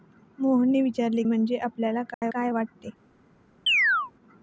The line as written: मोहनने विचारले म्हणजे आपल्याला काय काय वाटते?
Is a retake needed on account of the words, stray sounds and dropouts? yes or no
yes